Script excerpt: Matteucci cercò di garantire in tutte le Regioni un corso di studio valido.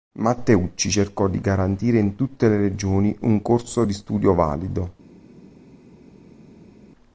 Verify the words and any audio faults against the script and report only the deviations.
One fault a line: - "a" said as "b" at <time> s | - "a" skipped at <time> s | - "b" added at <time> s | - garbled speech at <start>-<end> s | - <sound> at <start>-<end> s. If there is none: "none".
none